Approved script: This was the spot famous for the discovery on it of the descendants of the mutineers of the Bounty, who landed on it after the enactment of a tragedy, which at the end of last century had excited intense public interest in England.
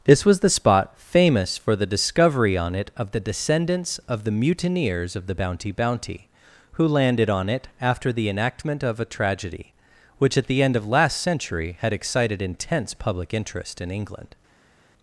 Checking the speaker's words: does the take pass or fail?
fail